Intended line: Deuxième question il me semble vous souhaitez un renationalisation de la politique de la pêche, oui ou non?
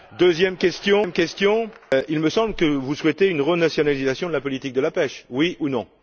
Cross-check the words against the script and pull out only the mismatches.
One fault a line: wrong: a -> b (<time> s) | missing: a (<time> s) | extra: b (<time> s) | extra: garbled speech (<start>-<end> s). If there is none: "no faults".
extra: que (2.6 s)
wrong: un -> une (3.3 s)